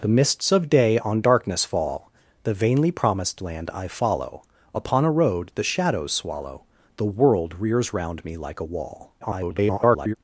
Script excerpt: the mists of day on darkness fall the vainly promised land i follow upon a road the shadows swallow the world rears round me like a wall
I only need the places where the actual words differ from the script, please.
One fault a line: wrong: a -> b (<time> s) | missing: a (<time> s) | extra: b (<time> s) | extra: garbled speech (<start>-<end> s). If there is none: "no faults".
extra: garbled speech (9.2-10.1 s)